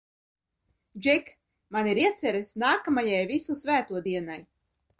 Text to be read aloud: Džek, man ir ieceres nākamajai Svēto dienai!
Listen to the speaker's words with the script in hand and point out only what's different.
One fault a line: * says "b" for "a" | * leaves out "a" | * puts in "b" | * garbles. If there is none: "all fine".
* puts in "Visu"